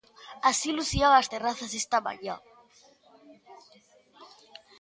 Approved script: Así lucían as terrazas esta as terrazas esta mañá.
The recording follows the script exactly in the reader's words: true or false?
false